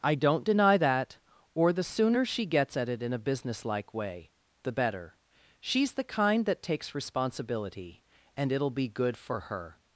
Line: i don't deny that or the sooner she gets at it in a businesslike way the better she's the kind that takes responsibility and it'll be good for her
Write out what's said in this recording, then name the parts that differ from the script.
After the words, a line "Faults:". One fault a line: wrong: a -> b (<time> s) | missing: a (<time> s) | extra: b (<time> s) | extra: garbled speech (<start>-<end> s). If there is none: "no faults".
i don't deny that or the sooner she gets at it in a businesslike way the better she's the kind that takes responsibility and it'll be good for her
Faults:
no faults